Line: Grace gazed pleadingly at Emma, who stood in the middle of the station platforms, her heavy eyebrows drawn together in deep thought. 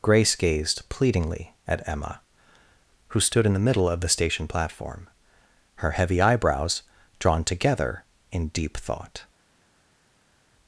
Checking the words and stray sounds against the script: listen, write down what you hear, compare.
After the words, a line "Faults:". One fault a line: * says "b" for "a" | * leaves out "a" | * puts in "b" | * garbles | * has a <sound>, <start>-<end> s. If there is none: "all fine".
Grace gazed pleadingly at Emma, who stood in the middle of the station platform, her heavy eyebrows drawn together in deep thought.
Faults:
* says "platform" for "platforms"